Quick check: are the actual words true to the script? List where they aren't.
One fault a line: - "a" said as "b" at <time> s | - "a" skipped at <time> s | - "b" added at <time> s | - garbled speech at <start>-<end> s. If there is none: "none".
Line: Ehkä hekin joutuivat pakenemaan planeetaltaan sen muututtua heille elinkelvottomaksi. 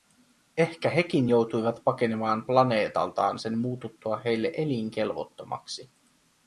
none